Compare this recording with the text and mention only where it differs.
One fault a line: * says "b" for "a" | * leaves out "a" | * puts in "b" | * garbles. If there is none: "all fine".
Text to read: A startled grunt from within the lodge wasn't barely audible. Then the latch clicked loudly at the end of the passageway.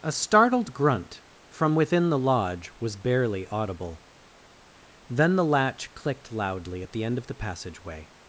* says "was" for "wasn't"